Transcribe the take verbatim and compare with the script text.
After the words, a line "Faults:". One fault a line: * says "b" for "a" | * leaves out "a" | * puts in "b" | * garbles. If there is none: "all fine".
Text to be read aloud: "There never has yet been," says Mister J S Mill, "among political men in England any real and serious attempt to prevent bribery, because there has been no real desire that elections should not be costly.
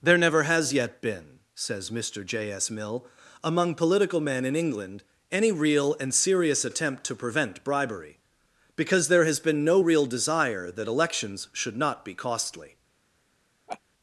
"There never has yet been," says Mister J S Mill, "among political men in England any real and serious attempt to prevent bribery, because there has been no real desire that elections should not be costly.
Faults:
all fine